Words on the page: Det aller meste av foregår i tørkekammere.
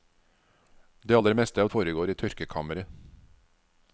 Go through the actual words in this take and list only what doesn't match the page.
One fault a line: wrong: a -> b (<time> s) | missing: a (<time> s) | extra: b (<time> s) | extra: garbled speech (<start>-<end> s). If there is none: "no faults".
no faults